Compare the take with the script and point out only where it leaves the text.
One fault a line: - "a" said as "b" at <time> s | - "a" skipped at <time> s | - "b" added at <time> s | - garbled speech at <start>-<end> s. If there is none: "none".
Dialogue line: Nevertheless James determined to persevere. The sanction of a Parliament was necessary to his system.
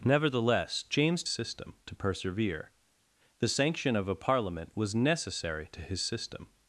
- "determined" said as "system" at 1.3 s